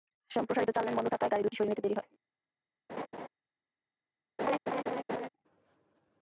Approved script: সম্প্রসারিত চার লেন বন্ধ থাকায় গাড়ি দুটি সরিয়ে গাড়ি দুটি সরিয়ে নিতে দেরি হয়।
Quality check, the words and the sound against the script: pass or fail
fail